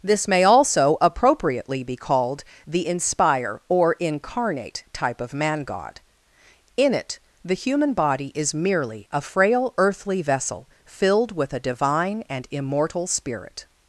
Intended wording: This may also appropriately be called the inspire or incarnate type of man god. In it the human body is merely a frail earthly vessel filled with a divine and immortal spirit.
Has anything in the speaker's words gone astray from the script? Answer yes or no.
no